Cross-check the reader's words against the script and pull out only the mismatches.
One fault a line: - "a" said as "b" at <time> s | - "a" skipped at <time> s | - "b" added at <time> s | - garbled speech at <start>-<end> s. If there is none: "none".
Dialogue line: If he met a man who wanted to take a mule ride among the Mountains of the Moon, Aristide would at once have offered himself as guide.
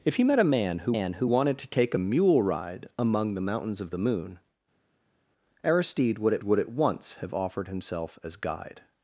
- "man who" added at 0.9 s
- "would at" added at 6.4 s